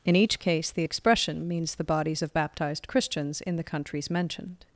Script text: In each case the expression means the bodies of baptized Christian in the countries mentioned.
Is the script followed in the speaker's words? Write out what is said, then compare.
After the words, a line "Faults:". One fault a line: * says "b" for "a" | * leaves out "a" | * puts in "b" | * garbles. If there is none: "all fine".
In each case the expression means the bodies of baptized Christians in the countries mentioned.
Faults:
* says "Christians" for "Christian"